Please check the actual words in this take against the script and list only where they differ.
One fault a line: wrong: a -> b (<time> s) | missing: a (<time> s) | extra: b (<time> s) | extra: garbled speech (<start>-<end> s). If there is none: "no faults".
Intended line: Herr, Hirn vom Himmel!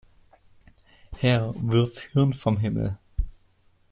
extra: wirf (1.6 s)